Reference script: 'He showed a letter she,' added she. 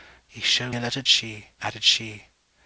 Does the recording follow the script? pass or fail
pass